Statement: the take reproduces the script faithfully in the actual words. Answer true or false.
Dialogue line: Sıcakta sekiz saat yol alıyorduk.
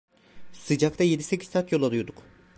false